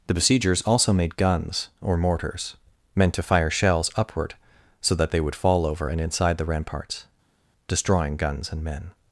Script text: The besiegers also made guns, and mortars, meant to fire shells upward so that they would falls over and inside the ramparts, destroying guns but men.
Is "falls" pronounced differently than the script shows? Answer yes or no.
yes